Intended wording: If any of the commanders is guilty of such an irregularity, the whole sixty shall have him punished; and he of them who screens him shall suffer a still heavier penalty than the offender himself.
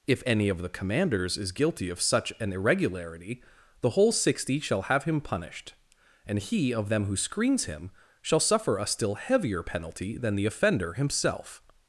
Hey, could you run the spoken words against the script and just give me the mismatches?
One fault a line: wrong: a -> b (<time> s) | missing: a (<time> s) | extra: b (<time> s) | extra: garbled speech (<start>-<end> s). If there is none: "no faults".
no faults